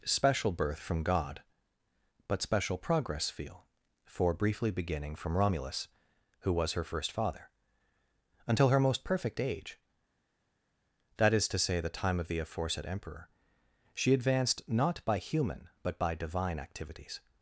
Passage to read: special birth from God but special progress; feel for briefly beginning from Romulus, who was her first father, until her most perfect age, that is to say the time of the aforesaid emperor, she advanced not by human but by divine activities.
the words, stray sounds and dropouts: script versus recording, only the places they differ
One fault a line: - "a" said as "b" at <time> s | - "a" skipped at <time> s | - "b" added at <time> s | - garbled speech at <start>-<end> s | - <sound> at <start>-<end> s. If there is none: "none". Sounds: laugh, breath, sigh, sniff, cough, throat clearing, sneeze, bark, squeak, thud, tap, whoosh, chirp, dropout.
none